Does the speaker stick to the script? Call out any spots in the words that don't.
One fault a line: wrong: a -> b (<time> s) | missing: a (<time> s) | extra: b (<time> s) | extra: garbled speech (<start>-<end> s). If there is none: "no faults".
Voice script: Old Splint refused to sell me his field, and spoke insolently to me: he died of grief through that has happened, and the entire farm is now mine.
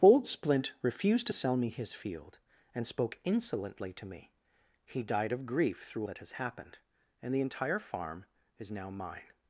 no faults